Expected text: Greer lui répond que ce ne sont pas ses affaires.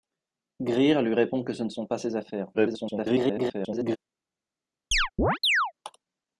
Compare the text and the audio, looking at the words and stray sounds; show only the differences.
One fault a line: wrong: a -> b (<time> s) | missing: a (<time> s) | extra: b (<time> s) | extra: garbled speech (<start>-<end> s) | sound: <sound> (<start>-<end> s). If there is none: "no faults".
extra: garbled speech (2.5-4.0 s)
sound: chirp (4.9-5.7 s)